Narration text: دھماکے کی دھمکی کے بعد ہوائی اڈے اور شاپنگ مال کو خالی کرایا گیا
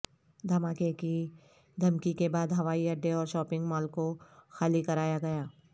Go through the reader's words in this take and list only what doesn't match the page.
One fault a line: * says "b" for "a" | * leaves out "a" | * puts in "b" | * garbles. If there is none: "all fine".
all fine